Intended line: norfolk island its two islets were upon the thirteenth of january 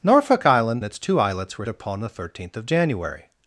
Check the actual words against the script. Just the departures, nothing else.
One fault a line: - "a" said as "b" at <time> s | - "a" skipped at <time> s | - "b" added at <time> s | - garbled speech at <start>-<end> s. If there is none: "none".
none